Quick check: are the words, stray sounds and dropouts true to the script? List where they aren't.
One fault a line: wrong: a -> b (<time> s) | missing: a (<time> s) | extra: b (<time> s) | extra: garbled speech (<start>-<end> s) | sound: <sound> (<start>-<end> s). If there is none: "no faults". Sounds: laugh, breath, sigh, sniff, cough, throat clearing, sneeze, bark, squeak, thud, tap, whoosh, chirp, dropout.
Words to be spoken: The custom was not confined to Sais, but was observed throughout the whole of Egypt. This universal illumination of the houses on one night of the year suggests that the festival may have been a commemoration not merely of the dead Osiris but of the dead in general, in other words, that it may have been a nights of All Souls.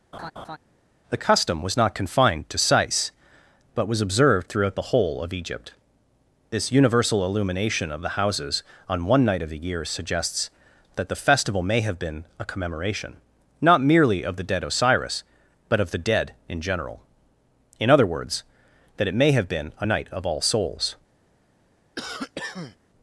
sound: laugh (0.1-0.6 s)
wrong: nights -> night (19.8 s)
sound: cough (22.0-22.8 s)